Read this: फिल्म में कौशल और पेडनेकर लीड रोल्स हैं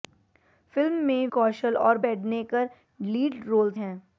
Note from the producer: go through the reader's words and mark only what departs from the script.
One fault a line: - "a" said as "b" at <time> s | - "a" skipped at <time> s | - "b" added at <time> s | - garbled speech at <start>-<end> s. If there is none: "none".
none